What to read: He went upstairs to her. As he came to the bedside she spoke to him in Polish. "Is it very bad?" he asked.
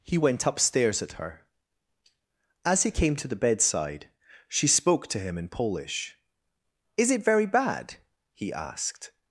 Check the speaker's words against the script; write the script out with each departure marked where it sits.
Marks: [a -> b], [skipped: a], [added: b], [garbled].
He went upstairs [to -> at] her. As he came to the bedside she spoke to him in Polish. "Is it very bad?" he asked.